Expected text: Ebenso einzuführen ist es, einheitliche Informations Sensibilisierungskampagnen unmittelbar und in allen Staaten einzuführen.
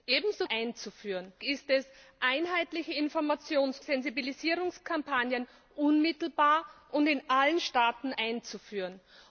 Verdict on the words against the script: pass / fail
pass